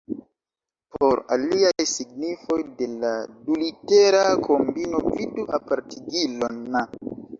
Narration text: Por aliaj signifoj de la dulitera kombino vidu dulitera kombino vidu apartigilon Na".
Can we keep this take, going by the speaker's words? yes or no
no